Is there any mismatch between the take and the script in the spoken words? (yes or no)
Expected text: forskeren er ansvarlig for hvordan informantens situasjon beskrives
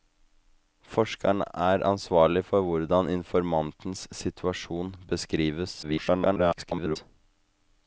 yes